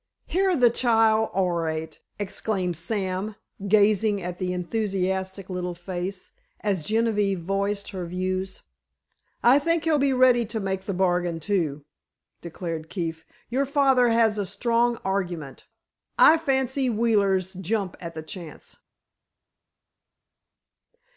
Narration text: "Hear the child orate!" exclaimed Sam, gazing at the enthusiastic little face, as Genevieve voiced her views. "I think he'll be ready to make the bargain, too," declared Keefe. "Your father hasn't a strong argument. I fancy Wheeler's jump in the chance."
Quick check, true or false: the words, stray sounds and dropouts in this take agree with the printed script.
false